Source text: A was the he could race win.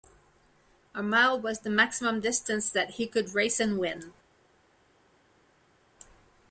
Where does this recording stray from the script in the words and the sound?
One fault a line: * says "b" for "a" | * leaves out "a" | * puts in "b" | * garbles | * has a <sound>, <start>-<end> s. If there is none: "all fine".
* puts in "mile"
* puts in "maximum distance that"
* puts in "and"